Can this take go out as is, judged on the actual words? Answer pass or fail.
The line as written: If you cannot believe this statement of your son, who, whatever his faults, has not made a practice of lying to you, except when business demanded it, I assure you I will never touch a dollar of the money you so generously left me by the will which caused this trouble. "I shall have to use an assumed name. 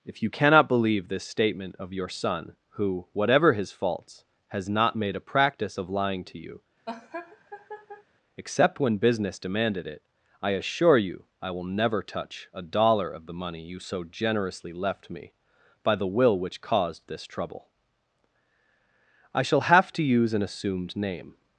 pass